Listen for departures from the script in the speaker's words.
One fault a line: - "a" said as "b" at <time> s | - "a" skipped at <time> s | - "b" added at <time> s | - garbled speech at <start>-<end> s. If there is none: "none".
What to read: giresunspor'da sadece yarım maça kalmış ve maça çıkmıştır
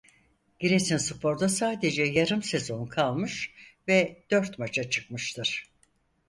- "maça" said as "sezon" at 2.4 s
- "dört" added at 4.3 s